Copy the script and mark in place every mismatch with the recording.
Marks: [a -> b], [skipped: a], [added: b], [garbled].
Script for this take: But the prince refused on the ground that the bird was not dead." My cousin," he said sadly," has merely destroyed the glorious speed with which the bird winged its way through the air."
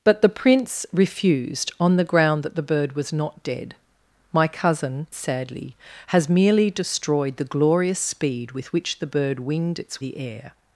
But the prince refused on the ground that the bird was not dead." My cousin," [skipped: he said] sadly," has merely destroyed the glorious speed with which the bird winged its [skipped: way through] the air."